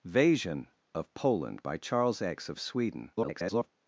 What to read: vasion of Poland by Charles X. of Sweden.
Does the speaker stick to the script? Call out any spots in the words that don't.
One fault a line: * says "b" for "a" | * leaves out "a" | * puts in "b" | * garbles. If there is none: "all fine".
* garbles